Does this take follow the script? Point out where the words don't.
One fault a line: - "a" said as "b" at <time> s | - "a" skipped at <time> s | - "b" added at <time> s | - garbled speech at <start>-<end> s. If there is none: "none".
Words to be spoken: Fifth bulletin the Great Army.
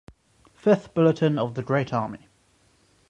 - "of" added at 1.4 s